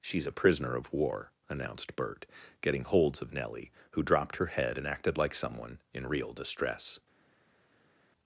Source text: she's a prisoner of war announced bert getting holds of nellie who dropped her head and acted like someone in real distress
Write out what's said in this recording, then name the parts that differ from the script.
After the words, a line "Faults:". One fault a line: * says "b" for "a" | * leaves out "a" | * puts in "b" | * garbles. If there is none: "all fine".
she's a prisoner of war announced bert getting holds of nellie who dropped her head and acted like someone in real distress
Faults:
all fine